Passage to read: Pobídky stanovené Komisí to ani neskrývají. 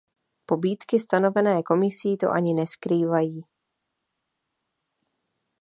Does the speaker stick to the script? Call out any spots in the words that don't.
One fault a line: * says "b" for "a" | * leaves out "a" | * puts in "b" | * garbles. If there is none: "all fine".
all fine